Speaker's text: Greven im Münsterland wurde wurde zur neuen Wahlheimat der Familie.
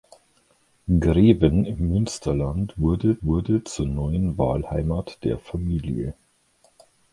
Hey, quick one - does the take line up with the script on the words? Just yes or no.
yes